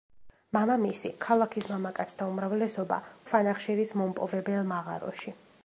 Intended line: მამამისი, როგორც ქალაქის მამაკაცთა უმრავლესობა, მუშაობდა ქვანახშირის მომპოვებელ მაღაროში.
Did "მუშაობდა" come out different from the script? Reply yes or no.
yes